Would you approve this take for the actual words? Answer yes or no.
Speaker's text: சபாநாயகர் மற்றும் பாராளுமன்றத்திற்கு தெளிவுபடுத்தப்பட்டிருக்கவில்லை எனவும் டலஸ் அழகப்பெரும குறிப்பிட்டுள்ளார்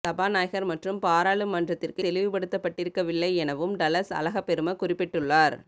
yes